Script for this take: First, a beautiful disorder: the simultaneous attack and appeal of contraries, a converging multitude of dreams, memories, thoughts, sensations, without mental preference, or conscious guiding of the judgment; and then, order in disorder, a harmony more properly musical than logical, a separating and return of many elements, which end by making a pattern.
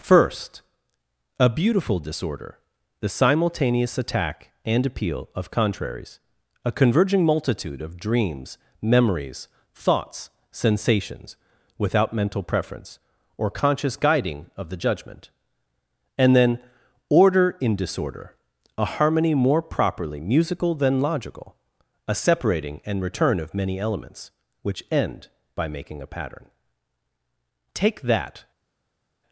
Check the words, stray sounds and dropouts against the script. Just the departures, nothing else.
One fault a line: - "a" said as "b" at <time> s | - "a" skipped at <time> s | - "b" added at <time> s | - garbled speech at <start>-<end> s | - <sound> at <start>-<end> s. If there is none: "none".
- "Take that" added at 27.7 s